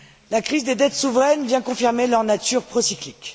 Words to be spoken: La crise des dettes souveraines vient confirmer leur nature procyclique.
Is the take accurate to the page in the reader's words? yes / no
yes